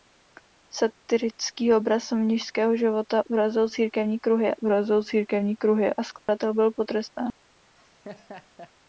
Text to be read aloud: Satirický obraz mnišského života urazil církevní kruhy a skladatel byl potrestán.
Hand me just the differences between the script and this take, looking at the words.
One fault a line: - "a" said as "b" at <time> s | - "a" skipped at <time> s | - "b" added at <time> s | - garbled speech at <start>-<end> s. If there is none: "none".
- "urazil církevní kruhy" added at 4.6 s